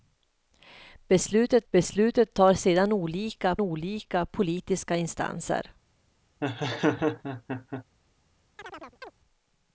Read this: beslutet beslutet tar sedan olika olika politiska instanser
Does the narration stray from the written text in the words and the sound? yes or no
yes